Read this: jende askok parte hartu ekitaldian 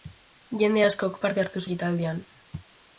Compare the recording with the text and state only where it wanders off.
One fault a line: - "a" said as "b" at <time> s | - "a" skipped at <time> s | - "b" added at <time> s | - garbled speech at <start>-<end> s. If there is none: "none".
none